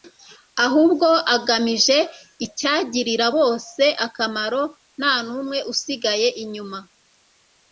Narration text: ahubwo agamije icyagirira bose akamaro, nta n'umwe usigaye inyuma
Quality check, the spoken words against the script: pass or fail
pass